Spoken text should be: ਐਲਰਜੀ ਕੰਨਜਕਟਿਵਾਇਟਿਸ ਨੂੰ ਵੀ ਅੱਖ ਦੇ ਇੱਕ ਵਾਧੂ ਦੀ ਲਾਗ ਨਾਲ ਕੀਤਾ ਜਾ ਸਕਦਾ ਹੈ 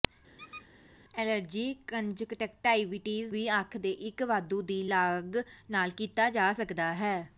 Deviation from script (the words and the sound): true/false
true